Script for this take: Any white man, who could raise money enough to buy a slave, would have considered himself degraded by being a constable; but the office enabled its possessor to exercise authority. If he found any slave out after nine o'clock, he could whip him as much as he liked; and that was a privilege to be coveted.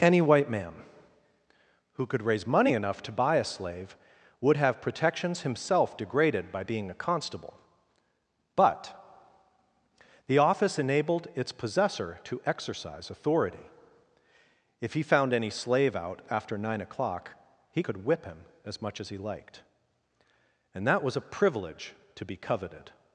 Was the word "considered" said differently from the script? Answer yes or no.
yes